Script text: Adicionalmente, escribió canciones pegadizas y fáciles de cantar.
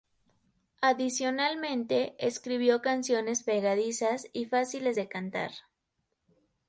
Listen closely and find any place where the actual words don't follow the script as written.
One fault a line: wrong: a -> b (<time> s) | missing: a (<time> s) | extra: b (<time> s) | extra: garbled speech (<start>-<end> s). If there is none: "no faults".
no faults